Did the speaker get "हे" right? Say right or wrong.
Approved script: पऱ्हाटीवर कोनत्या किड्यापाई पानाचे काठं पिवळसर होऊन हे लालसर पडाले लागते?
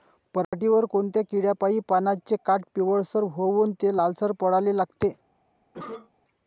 wrong